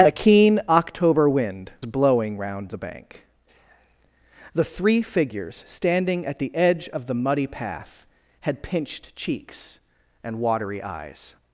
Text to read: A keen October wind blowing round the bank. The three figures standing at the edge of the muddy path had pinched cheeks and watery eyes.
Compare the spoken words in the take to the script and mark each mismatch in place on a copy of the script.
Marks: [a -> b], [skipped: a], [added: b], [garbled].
A keen October wind blowing round the bank. The three figures standing at the edge of the muddy path had pinched cheeks and watery eyes.